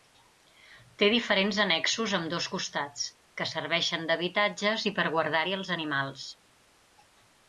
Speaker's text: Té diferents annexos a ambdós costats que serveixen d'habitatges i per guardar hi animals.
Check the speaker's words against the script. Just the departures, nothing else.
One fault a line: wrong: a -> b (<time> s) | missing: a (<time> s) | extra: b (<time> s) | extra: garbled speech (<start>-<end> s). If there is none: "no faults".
extra: els (5.6 s)